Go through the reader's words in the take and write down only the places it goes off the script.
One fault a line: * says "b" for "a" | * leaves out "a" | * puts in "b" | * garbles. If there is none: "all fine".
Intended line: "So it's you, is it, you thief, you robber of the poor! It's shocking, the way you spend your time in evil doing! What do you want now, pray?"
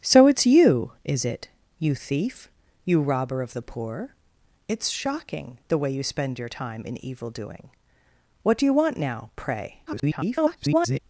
* garbles